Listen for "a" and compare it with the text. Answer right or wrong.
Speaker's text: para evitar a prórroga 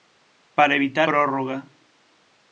wrong